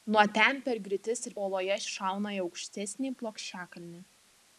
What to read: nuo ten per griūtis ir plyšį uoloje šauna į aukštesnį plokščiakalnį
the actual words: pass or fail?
fail